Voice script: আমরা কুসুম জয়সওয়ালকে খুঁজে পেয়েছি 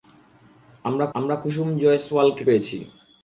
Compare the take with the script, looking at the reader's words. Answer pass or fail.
fail